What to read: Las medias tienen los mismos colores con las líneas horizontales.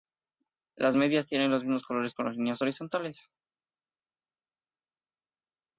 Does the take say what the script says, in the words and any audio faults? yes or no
yes